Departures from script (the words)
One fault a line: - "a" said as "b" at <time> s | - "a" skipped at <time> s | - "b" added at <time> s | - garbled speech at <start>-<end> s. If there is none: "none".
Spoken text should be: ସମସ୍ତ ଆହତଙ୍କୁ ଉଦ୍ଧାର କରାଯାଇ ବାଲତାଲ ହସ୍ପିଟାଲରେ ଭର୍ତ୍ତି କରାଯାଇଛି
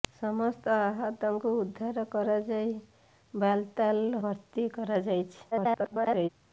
- "ହସ୍ପିଟାଲରେ" skipped at 4.2 s
- garbled speech at 5.5-6.3 s